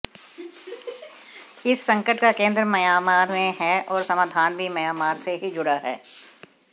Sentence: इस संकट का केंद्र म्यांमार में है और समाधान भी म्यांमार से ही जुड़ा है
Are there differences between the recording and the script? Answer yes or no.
no